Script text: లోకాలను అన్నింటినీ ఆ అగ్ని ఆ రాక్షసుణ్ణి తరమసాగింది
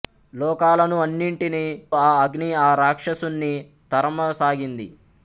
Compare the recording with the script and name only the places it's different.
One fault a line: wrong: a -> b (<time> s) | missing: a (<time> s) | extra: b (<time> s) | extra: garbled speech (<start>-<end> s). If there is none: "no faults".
no faults